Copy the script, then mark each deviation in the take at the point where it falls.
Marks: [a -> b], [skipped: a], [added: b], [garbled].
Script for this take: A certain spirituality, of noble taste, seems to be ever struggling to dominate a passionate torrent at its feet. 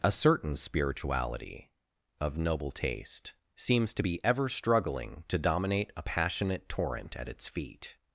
A certain spirituality, of noble taste, seems to be ever struggling to dominate a passionate torrent at its feet.